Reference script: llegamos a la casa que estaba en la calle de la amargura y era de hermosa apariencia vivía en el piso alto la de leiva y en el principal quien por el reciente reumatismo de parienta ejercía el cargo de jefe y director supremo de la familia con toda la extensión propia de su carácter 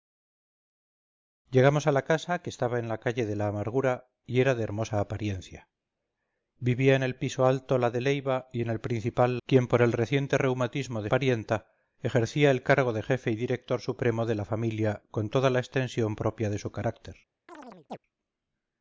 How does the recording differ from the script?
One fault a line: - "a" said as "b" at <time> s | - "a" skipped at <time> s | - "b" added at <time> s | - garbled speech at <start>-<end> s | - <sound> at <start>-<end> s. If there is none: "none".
- chirp at 17.5-18.0 s